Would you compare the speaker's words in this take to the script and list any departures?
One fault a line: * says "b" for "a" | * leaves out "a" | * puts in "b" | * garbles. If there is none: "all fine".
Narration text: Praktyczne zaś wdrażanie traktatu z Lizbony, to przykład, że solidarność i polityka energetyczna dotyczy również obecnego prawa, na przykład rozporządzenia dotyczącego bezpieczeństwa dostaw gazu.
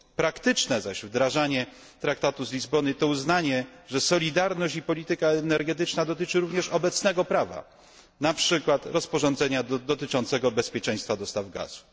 * says "uznanie" for "przykład"